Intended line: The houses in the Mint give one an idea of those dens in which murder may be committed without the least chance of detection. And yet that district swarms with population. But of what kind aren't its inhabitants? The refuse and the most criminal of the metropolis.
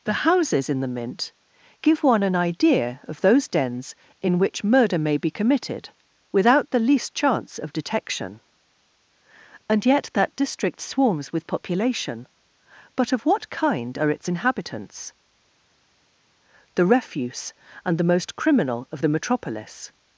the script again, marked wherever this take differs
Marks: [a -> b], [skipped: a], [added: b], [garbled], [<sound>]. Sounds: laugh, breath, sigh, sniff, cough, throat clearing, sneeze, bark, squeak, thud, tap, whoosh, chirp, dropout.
The houses in the Mint give one an idea of those dens in which murder may be committed without the least chance of detection. And yet that district swarms with population. But of what kind [aren't -> are] its inhabitants? The refuse and the most criminal of the metropolis.